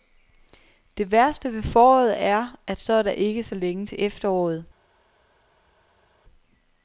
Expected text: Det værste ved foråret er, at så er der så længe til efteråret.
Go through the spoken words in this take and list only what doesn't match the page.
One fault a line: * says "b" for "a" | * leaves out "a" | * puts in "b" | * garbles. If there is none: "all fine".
* puts in "ikke"